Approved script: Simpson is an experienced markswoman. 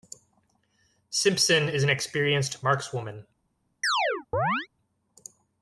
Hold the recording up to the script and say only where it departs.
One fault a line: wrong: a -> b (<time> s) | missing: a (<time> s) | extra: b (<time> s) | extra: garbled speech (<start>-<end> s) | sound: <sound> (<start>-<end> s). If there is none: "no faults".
sound: chirp (3.8-4.7 s)